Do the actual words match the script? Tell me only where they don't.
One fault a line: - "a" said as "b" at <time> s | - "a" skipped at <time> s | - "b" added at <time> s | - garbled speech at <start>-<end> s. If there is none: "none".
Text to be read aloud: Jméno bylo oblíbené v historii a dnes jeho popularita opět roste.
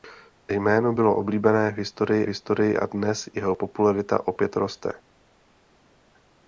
- "historii" added at 2.3 s